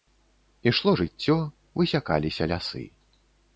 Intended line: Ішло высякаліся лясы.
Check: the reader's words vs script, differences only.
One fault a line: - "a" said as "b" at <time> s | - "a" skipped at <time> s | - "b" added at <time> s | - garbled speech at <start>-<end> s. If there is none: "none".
- "жыццё" added at 1.0 s